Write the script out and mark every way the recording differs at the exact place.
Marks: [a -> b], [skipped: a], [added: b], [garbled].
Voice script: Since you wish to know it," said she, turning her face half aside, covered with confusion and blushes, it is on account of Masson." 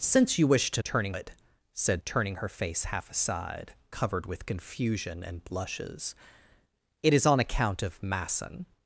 Since you wish to [know -> turning] it," said [skipped: she,] turning her face half aside, covered with confusion and blushes, it is on account of Masson."